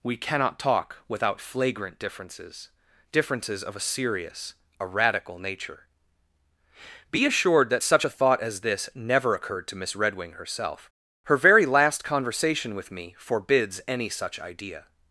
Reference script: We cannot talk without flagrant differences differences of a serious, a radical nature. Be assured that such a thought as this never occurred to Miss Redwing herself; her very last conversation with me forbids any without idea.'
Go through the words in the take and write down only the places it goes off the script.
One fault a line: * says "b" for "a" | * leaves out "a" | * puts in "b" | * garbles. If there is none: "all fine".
* says "such" for "without"